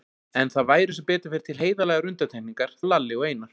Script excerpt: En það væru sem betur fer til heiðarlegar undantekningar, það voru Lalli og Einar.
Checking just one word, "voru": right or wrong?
wrong